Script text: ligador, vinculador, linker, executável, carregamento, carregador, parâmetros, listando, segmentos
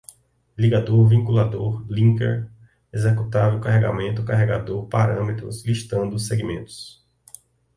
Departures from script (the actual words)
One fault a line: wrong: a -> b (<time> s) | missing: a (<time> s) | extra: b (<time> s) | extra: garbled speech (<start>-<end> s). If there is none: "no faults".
no faults